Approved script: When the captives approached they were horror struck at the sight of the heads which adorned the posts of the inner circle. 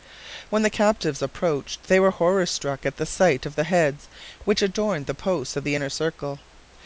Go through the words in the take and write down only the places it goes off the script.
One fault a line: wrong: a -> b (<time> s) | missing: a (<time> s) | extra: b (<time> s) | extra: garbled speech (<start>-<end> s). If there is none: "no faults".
no faults